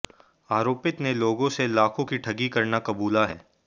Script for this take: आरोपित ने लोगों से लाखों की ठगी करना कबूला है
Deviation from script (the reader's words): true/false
false